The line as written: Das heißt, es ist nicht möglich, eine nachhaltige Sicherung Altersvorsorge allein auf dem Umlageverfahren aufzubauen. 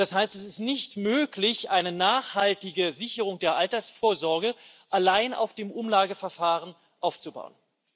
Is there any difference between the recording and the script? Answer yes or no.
yes